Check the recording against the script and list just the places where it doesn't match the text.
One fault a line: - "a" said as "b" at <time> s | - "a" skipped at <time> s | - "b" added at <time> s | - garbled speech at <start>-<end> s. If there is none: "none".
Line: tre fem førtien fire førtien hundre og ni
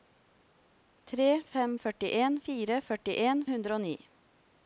none